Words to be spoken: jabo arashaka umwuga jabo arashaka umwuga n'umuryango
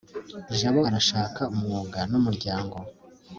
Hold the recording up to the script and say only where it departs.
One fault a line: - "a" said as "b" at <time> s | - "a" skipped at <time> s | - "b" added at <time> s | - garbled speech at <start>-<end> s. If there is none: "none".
- "jabo arashaka umwuga" skipped at 2.0 s